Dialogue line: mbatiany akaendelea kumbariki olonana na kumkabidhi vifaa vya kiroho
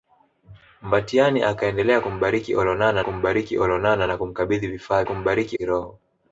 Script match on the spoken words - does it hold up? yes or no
no